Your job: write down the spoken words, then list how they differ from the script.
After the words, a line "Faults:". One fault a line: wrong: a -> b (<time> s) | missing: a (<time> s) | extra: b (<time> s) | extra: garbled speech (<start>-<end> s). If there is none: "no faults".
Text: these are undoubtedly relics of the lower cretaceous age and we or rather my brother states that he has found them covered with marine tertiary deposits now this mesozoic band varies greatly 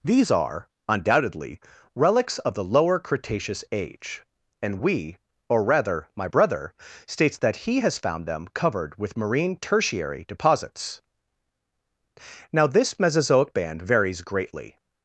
these are undoubtedly relics of the lower cretaceous age and we or rather my brother states that he has found them covered with marine tertiary deposits now this mesozoic band varies greatly
Faults:
no faults